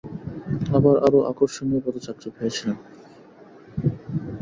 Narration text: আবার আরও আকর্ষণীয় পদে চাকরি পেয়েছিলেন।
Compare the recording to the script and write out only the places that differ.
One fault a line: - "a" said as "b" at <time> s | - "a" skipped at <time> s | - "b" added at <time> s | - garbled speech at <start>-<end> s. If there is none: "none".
none